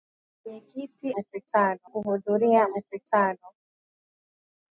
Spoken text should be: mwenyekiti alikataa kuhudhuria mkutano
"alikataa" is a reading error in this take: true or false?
true